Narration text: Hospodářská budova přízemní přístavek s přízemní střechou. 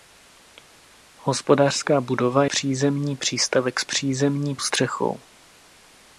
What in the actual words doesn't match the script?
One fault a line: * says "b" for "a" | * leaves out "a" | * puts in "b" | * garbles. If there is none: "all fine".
all fine